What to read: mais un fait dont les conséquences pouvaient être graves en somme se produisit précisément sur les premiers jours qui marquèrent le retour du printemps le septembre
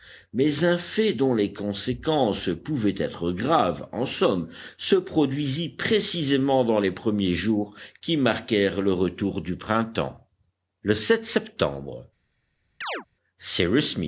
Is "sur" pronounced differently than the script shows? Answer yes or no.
yes